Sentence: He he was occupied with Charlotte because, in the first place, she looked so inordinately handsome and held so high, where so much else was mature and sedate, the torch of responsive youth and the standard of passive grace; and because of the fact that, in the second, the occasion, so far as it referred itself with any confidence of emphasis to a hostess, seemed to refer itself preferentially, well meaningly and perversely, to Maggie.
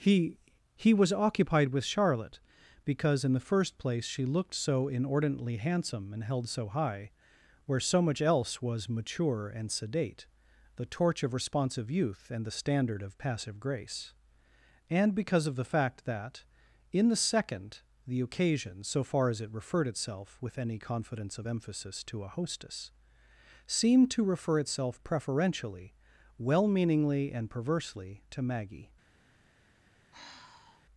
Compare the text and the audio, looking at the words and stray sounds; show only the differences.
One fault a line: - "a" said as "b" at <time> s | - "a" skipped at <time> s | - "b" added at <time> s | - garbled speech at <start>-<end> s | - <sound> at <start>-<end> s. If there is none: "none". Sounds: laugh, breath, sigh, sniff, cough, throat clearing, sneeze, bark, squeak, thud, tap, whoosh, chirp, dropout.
- sigh at 30.1-30.9 s